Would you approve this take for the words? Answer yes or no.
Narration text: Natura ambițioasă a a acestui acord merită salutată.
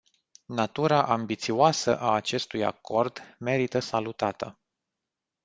no